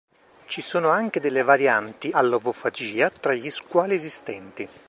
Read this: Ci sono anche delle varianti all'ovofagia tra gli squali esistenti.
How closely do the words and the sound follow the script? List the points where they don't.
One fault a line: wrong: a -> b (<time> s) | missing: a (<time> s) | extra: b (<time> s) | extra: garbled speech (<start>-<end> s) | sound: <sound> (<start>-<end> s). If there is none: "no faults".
no faults